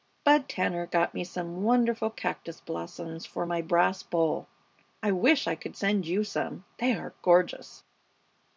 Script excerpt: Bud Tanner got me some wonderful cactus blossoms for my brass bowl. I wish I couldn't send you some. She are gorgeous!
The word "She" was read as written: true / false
false